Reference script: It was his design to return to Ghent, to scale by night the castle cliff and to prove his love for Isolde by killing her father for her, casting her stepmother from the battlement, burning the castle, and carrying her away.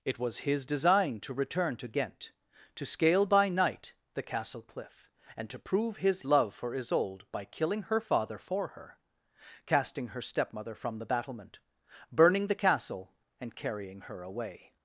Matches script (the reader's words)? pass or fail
pass